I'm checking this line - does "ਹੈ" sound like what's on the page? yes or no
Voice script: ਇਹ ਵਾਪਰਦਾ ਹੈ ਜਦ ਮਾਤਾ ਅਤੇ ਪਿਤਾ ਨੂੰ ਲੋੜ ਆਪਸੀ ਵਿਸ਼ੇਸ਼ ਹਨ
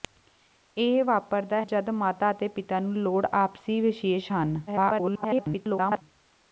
no